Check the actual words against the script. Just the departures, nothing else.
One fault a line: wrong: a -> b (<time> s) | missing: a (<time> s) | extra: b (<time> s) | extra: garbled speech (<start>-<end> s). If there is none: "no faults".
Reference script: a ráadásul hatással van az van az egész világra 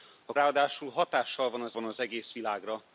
no faults